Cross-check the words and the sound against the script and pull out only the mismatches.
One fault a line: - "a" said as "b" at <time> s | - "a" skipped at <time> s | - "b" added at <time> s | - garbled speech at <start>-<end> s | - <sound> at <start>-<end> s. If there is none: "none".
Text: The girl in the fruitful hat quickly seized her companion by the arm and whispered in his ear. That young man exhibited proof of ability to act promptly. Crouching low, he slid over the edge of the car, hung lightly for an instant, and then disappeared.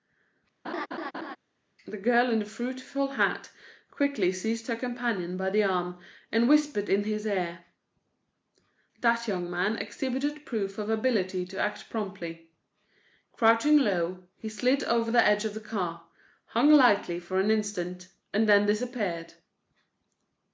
- laugh at 0.6-1.4 s